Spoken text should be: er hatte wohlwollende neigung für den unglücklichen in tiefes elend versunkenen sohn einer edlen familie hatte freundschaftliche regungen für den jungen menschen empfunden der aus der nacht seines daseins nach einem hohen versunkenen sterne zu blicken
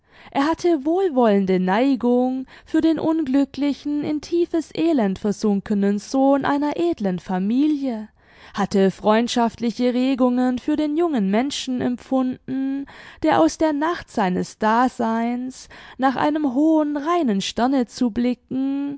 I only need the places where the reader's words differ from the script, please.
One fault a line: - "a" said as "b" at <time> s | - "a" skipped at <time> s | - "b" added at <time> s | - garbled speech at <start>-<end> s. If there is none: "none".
- "versunkenen" said as "reinen" at 17.0 s